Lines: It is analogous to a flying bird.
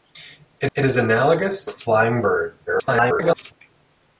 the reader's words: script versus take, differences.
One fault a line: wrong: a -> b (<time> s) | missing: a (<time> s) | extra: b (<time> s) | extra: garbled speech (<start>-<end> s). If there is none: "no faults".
extra: it (0.7 s)
missing: to (1.6 s)
extra: garbled speech (2.7-3.5 s)